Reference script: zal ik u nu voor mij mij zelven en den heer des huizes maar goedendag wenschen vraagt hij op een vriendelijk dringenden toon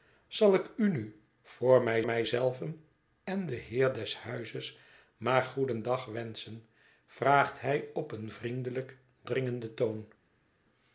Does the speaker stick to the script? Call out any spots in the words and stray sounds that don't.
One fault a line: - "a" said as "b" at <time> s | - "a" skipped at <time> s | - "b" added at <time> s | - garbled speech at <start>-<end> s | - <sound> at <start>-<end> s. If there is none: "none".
none